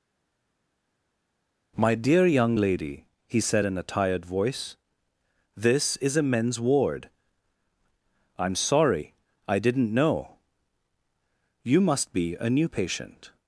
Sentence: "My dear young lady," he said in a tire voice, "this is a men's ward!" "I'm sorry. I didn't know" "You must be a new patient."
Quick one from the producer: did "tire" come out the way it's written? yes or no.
no